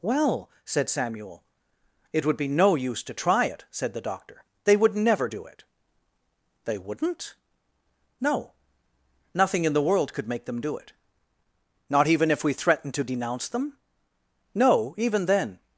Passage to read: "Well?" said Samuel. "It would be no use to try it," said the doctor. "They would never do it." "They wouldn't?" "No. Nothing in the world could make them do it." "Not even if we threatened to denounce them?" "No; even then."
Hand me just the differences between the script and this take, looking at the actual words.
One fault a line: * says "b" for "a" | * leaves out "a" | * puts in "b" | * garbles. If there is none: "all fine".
all fine